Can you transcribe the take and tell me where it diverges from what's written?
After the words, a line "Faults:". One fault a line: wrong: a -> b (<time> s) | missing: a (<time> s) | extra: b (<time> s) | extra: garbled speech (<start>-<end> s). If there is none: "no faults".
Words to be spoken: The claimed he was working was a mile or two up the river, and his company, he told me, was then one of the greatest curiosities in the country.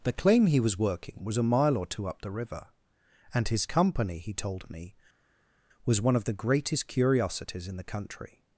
The claim he was working was a mile or two up the river, and his company, he told me, was one of the greatest curiosities in the country.
Faults:
wrong: claimed -> claim (0.1 s)
missing: then (6.0 s)